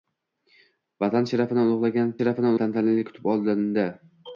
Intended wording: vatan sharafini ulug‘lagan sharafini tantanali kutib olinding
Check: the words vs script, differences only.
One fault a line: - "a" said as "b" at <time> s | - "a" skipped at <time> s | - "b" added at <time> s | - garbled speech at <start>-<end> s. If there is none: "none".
none